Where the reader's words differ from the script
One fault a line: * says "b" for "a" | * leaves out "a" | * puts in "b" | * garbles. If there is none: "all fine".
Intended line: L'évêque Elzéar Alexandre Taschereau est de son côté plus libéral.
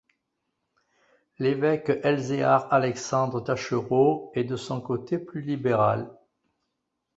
all fine